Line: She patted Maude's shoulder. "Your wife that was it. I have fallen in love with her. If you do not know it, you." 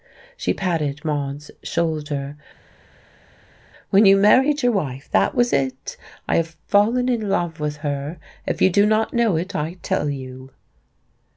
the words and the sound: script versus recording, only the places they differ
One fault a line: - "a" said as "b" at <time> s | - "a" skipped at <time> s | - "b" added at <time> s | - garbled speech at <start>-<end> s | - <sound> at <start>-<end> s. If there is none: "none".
- "When you married" added at 3.9 s
- "I tell" added at 9.5 s